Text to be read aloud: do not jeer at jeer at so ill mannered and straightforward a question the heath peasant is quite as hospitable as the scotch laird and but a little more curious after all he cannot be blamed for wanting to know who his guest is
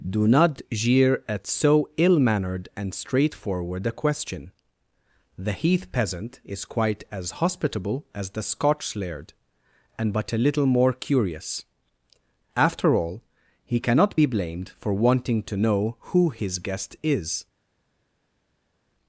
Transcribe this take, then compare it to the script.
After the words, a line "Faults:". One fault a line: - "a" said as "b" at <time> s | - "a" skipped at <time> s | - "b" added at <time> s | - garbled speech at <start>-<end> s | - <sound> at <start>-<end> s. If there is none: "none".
do not jeer at so ill mannered and straightforward a question the heath peasant is quite as hospitable as the scotch laird and but a little more curious after all he cannot be blamed for wanting to know who his guest is
Faults:
- "jeer at" skipped at 1.4 s